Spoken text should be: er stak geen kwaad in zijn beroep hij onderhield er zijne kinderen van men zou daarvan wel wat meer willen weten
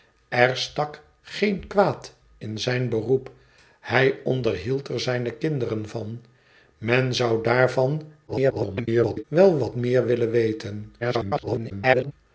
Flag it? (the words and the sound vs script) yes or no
yes